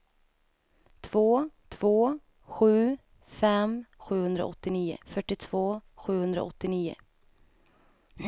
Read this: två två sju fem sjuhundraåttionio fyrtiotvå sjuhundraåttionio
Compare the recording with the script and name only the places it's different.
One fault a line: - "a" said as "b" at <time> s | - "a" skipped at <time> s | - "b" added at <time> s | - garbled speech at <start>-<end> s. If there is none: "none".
none